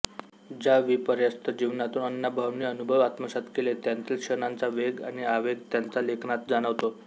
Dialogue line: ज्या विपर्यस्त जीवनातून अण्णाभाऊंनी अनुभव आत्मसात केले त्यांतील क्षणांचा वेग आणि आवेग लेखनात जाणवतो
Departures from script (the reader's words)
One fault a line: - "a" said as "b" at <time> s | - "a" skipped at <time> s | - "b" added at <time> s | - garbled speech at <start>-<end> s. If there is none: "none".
- "त्यांच्या" added at 5.7 s